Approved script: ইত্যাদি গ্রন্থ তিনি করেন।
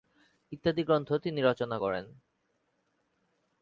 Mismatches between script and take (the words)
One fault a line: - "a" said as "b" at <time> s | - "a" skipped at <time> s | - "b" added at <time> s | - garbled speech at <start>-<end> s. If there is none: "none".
- "রচনা" added at 1.4 s